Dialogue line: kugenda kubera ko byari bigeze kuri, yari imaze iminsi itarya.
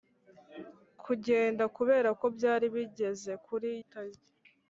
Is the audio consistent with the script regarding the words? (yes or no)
no